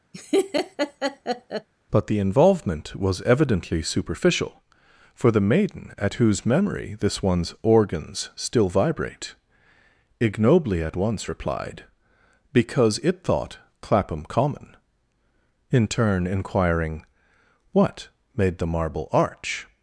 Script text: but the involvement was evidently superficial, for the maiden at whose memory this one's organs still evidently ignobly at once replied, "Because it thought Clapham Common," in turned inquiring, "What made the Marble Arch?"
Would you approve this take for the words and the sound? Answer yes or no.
no